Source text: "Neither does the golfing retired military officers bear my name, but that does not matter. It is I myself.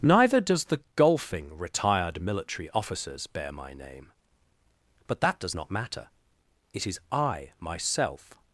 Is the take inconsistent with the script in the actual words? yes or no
no